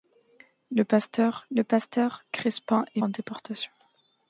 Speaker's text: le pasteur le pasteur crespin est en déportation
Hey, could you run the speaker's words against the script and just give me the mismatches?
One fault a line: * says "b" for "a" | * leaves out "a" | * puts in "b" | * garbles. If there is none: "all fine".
all fine